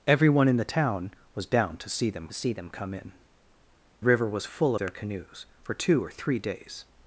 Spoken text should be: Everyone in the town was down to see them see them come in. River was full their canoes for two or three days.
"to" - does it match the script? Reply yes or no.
yes